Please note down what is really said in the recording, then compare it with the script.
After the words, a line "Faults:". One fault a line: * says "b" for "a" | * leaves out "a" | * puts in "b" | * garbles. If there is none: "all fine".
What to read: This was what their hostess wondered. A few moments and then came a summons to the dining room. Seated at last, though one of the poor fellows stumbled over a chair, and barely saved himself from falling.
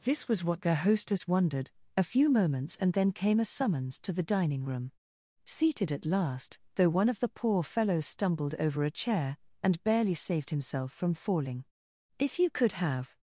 This was what their hostess wondered. A few moments and then came a summons to the dining room. Seated at last, though one of the poor fellows stumbled over a chair, and barely saved himself from falling. If you could have
Faults:
* puts in "If you could have"